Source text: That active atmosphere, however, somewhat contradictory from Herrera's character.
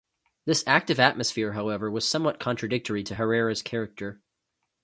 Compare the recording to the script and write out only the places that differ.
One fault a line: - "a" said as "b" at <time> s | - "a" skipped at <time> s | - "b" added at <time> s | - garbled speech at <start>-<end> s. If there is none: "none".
- "That" said as "This" at 0.5 s
- "was" added at 1.9 s
- "from" said as "to" at 3.0 s